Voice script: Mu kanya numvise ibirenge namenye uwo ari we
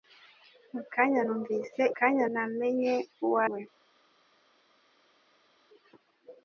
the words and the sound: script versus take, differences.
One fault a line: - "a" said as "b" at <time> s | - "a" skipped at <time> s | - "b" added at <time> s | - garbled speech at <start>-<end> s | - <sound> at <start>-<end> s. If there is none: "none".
- "ibirenge" said as "kanya" at 2.0 s
- "ari" skipped at 3.4 s